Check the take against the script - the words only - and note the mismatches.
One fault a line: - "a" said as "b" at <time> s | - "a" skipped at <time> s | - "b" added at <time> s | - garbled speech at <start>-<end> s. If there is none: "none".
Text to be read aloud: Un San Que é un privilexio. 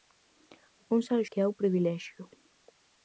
none